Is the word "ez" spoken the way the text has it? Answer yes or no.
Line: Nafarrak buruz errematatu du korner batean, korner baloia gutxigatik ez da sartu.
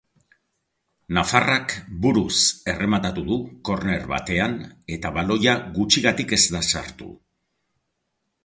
yes